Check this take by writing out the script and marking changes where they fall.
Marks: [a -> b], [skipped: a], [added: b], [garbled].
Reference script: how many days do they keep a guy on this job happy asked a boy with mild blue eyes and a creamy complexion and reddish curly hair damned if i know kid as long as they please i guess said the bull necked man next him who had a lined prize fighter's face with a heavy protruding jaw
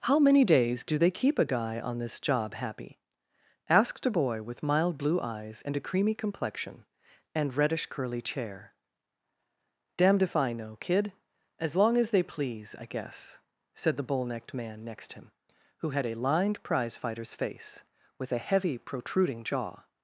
how many days do they keep a guy on this job happy asked a boy with mild blue eyes and a creamy complexion and reddish curly [hair -> chair] damned if i know kid as long as they please i guess said the bull necked man next him who had a lined prize fighter's face with a heavy protruding jaw